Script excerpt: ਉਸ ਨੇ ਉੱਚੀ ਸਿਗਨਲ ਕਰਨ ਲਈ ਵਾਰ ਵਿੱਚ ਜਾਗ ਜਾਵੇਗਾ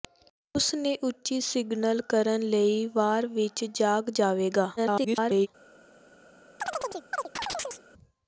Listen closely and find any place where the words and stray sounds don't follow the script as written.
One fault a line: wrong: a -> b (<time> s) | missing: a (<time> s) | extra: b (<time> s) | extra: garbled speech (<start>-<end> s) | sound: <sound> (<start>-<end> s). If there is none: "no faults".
extra: garbled speech (4.8-5.5 s)
sound: chirp (6.6-7.8 s)